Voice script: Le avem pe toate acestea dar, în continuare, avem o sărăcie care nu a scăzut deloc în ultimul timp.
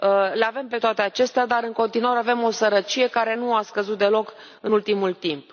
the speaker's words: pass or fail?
pass